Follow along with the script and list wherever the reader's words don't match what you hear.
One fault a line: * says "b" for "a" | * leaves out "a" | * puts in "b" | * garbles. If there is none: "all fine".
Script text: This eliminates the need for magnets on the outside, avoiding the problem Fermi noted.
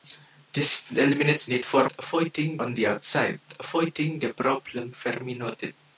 * leaves out "the"
* says "avoiding" for "magnets"